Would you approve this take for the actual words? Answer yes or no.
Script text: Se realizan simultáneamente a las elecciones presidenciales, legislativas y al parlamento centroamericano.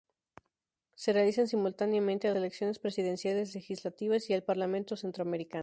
no